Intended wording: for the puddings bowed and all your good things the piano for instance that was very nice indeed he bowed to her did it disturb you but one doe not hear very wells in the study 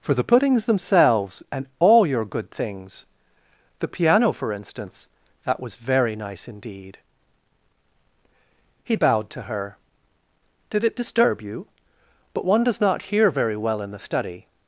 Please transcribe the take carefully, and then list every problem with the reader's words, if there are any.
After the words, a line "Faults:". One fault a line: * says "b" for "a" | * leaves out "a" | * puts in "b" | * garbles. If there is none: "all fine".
for the puddings themselves and all your good things the piano for instance that was very nice indeed he bowed to her did it disturb you but one does not hear very well in the study
Faults:
* says "themselves" for "bowed"
* says "does" for "doe"
* says "well" for "wells"